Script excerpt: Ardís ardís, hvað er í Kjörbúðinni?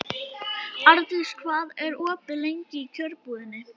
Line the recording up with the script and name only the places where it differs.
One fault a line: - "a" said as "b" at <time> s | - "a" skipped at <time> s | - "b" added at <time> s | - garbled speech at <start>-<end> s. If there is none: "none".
- "ardís" skipped at 1.3 s
- "opið lengi" added at 2.0 s